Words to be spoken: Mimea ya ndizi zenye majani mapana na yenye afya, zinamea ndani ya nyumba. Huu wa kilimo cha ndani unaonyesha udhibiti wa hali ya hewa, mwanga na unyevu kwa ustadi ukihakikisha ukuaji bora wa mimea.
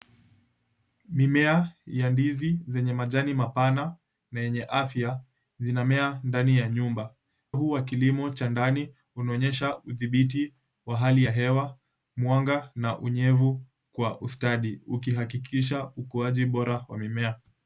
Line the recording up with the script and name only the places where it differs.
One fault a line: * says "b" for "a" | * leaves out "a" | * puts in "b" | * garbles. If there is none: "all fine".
all fine